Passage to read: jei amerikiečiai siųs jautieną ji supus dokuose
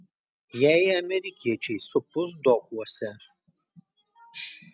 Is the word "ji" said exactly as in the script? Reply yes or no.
no